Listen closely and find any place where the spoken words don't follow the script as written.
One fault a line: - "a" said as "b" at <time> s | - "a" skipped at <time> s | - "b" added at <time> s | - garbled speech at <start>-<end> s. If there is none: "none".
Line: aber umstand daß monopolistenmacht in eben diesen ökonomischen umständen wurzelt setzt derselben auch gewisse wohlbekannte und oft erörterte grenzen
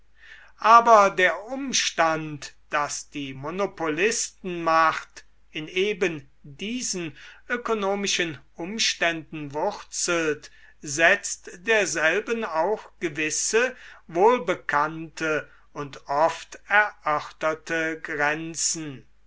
- "der" added at 1.1 s
- "die" added at 3.1 s